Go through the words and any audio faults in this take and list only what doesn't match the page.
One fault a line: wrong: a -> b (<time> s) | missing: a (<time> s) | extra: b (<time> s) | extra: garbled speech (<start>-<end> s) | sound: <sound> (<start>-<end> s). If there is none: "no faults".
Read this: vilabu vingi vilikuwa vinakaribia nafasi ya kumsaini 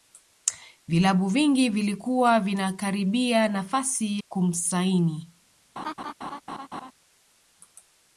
missing: ya (4.2 s)
sound: laugh (5.8-6.9 s)